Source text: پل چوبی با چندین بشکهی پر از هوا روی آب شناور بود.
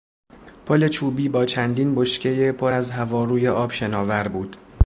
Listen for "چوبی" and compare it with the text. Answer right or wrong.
right